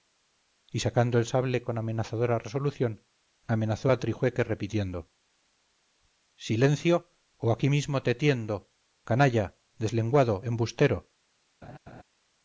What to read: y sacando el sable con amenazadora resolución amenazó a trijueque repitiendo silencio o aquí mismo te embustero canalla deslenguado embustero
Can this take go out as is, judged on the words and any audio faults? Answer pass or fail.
fail